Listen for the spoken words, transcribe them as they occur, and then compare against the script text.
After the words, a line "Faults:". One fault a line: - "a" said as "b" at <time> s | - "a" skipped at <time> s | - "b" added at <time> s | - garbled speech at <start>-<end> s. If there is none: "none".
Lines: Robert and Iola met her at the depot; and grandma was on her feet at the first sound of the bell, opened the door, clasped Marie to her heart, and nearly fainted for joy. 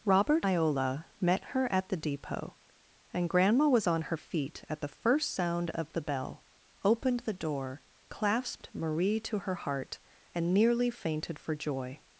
Robert Iola met her at the depot; and grandma was on her feet at the first sound of the bell, opened the door, clasped Marie to her heart, and nearly fainted for joy.
Faults:
- "and" skipped at 0.5 s